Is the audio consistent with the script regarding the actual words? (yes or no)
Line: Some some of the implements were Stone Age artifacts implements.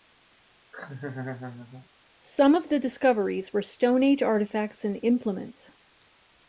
no